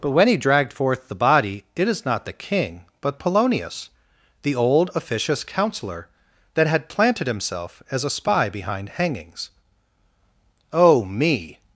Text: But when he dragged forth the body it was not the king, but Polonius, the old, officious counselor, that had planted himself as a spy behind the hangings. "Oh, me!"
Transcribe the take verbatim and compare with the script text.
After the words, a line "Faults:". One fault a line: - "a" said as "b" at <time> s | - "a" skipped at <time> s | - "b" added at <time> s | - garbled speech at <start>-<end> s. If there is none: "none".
But when he dragged forth the body it is not the king, but Polonius, the old, officious counselor, that had planted himself as a spy behind hangings. "Oh, me!"
Faults:
- "was" said as "is" at 1.9 s
- "the" skipped at 8.9 s